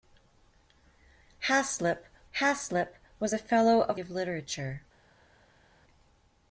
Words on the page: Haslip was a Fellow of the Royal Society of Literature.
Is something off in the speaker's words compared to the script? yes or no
yes